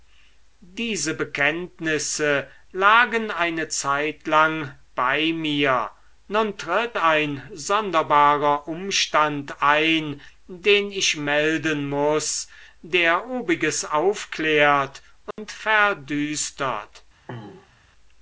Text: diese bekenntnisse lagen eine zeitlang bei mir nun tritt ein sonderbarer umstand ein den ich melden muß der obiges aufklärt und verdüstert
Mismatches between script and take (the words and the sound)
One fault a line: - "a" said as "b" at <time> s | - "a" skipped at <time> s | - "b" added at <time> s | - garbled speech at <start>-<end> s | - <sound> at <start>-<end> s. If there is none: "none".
- dropout at 15.3-15.4 s
- throat clearing at 17.3-17.8 s